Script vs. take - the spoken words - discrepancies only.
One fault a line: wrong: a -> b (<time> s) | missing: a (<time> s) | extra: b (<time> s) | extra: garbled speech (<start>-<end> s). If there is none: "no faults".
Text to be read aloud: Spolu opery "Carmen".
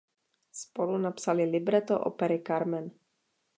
extra: napsali libreto (1.0 s)